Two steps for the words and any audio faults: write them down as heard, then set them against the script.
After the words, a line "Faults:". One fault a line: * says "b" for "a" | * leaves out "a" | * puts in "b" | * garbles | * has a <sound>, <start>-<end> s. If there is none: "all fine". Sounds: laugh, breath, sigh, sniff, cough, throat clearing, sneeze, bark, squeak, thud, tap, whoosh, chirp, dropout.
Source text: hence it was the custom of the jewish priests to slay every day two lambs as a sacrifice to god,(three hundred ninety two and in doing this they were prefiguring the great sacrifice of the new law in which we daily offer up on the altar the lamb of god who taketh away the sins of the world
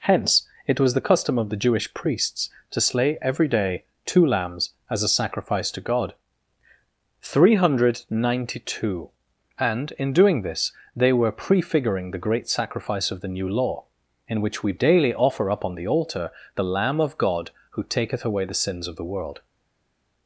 hence it was the custom of the jewish priests to slay every day two lambs as a sacrifice to god,(three hundred ninety two and in doing this they were prefiguring the great sacrifice of the new law in which we daily offer up on the altar the lamb of god who taketh away the sins of the world
Faults:
all fine